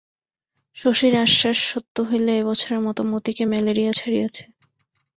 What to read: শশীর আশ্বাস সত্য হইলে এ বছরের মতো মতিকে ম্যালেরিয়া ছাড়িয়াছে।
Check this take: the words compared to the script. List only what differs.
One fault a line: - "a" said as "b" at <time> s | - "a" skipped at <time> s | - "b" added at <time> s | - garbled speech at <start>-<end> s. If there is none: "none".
none